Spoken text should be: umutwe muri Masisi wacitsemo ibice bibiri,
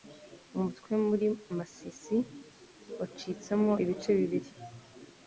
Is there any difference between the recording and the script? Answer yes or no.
no